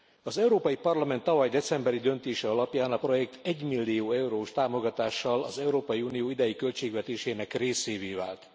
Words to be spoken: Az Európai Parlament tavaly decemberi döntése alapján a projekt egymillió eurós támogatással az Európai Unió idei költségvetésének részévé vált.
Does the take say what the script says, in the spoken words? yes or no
yes